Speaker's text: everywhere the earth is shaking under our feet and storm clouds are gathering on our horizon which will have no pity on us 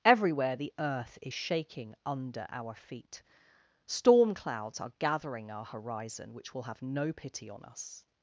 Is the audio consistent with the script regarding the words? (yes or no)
no